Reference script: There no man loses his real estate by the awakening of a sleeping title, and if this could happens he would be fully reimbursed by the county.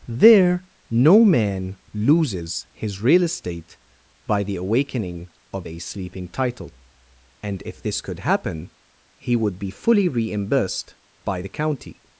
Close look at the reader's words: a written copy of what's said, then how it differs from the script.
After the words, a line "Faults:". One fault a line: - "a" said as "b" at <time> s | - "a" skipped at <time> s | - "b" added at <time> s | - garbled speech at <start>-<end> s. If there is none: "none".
There no man loses his real estate by the awakening of a sleeping title, and if this could happen he would be fully reimbursed by the county.
Faults:
- "happens" said as "happen" at 8.2 s